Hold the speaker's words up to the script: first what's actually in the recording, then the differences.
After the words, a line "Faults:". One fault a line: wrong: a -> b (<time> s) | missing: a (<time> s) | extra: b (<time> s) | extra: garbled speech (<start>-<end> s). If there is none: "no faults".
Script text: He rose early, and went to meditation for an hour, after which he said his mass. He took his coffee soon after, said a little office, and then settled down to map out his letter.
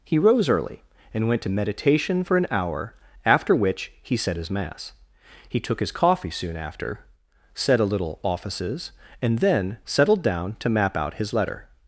He rose early, and went to meditation for an hour, after which he said his mass. He took his coffee soon after, said a little offices, and then settled down to map out his letter.
Faults:
wrong: office -> offices (8.2 s)